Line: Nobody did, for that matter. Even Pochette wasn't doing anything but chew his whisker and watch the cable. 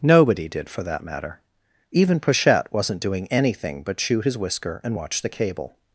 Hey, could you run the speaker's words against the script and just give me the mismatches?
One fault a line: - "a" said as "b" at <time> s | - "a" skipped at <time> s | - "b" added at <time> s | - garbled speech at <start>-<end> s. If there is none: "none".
none